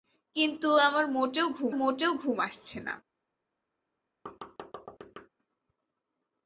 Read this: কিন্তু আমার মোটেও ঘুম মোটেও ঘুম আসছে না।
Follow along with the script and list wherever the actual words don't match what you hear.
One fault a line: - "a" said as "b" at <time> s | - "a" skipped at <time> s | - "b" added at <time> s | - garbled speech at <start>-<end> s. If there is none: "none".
none